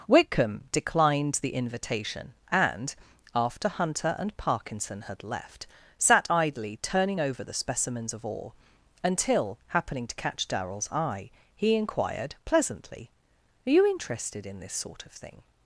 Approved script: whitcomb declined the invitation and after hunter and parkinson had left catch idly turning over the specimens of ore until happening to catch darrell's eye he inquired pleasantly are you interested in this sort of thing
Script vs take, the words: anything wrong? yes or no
yes